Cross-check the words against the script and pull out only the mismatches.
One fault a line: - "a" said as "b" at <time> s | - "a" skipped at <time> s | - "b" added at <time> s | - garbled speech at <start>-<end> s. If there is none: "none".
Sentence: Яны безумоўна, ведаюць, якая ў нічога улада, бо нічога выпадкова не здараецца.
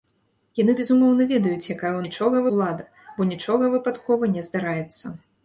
none